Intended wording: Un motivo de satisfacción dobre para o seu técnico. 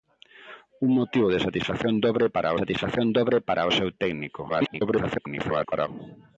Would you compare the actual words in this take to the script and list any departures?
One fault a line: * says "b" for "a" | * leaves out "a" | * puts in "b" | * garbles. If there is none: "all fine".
* puts in "satisfacción dobre para"
* garbles